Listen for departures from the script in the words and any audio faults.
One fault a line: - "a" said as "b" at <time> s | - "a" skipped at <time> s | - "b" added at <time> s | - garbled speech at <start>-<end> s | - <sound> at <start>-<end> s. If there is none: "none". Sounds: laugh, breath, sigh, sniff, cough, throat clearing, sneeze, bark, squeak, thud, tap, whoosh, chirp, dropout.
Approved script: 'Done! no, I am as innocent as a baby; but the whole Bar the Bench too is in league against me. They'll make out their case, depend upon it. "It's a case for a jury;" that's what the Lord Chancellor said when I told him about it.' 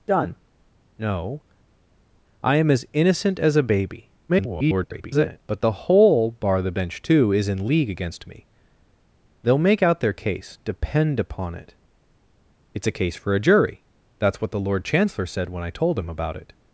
- garbled speech at 4.3-5.4 s